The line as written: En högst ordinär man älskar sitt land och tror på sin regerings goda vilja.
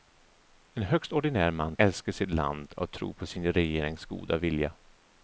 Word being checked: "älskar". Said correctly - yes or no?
yes